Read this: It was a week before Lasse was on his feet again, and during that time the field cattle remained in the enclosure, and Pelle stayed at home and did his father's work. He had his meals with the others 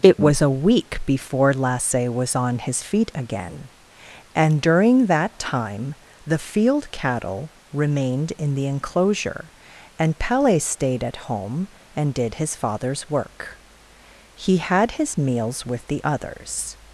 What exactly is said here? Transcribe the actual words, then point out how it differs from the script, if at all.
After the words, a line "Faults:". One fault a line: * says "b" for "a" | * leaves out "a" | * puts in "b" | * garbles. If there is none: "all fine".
It was a week before Lasse was on his feet again, and during that time the field cattle remained in the enclosure, and Pelle stayed at home and did his father's work. He had his meals with the others
Faults:
all fine